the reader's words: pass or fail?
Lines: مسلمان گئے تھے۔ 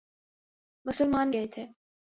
pass